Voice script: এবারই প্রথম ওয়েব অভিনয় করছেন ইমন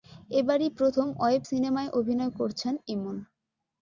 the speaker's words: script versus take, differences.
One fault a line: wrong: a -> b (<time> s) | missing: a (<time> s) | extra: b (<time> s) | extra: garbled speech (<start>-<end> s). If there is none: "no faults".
extra: সিনেমায় (1.5 s)